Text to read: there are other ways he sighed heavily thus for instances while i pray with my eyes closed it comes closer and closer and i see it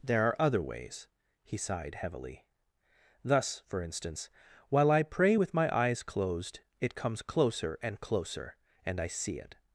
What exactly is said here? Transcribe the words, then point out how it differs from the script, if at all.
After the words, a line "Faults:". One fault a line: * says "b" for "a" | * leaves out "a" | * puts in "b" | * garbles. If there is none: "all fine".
there are other ways he sighed heavily thus for instance while i pray with my eyes closed it comes closer and closer and i see it
Faults:
* says "instance" for "instances"